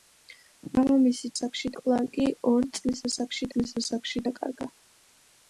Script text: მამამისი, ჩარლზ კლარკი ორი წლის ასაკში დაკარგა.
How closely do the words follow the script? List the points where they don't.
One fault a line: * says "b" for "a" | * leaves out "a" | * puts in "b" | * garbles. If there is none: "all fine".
* says "ასაკში" for "ჩარლზ"
* puts in "წლის ასაკში"